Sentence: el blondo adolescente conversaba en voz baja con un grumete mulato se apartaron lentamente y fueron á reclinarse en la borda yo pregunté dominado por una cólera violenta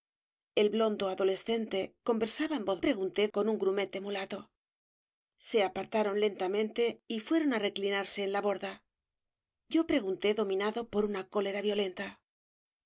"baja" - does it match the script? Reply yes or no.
no